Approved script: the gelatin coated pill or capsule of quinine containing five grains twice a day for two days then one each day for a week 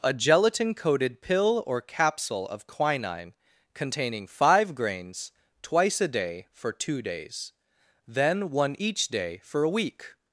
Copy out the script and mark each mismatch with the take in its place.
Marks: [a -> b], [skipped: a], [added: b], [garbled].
[the -> a] gelatin coated pill or capsule of quinine containing five grains twice a day for two days then one each day for a week